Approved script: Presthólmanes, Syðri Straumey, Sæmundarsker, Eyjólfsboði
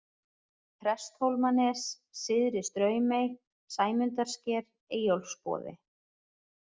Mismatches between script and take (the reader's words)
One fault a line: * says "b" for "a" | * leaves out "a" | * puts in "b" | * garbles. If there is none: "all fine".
all fine